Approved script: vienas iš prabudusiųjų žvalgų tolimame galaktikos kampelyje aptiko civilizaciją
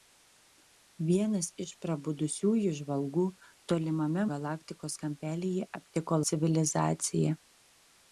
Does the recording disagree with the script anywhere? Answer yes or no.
no